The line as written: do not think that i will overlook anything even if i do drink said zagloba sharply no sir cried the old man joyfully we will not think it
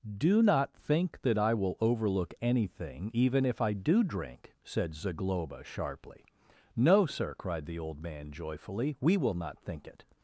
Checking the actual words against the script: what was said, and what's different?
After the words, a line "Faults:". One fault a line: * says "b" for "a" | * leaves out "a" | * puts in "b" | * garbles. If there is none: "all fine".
do not think that i will overlook anything even if i do drink said zagloba sharply no sir cried the old man joyfully we will not think it
Faults:
all fine